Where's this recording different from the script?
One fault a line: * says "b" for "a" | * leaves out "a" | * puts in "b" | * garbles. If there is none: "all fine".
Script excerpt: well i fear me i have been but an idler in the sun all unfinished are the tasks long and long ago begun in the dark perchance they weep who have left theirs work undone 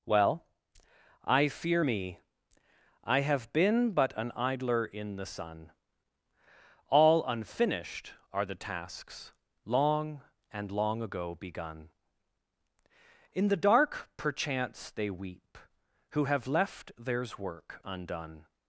all fine